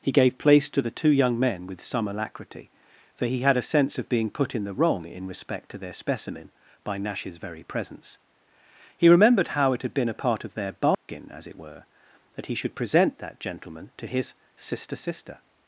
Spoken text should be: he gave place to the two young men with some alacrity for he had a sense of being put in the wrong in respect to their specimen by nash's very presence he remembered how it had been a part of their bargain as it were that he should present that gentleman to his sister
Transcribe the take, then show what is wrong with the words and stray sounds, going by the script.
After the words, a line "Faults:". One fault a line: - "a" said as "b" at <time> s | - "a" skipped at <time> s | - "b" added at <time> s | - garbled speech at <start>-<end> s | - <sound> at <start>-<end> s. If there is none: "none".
he gave place to the two young men with some alacrity for he had a sense of being put in the wrong in respect to their specimen by nash's very presence he remembered how it had been a part of their bargain as it were that he should present that gentleman to his sister sister
Faults:
- dropout at 10.9-11.1 s
- "sister" added at 14.9 s